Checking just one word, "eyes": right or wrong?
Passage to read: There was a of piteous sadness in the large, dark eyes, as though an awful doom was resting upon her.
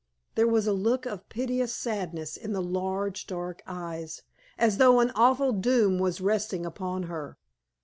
right